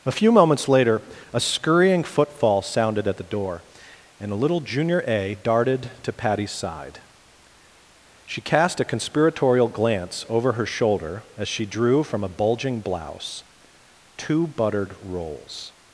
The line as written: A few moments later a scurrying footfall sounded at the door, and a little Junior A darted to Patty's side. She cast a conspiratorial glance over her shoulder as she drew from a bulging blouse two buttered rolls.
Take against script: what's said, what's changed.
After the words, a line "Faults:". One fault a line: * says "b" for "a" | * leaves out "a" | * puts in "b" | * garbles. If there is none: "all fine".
A few moments later a scurrying footfall sounded at the door, and a little Junior A darted to Patty's side. She cast a conspiratorial glance over her shoulder as she drew from a bulging blouse two buttered rolls.
Faults:
all fine